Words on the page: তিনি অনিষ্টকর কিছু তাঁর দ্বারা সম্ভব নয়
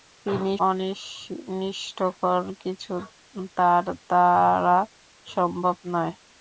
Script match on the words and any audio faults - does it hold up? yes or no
yes